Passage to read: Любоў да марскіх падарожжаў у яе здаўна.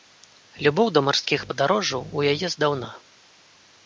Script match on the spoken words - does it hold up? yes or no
yes